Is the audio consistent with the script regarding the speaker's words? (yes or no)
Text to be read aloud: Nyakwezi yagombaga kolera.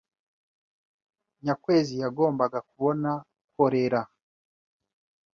no